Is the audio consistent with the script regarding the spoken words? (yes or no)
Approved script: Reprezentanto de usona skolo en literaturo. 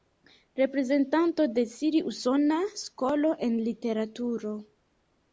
no